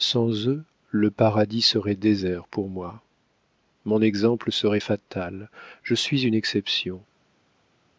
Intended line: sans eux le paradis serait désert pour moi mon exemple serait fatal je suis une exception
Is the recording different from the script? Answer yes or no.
no